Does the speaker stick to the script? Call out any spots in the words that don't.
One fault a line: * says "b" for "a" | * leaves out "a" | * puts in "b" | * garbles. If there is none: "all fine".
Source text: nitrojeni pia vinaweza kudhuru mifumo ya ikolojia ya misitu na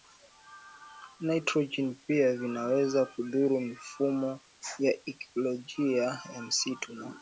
all fine